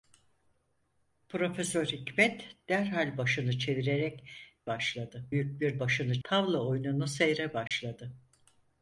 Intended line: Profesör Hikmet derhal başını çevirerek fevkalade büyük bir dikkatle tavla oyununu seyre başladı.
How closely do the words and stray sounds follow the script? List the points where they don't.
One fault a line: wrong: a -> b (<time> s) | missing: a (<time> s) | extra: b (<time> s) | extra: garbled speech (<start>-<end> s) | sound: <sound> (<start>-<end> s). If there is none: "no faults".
wrong: fevkalade -> başladı (4.7 s)
wrong: dikkatle -> başını (5.8 s)
sound: dropout (7.7-7.7 s)